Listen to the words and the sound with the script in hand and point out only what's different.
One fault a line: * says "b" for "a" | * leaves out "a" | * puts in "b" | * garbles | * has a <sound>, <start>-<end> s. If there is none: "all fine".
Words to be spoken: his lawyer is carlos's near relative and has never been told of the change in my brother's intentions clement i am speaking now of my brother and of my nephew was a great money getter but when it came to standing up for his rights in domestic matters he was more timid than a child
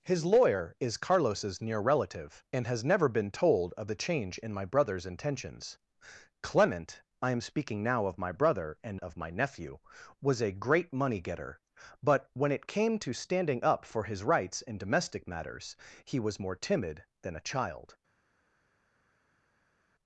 all fine